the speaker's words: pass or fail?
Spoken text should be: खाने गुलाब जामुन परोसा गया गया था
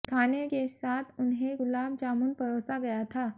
fail